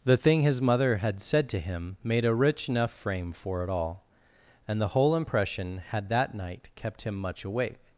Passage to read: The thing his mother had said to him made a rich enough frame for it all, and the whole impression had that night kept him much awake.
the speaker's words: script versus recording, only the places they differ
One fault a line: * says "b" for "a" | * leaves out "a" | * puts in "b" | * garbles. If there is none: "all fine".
all fine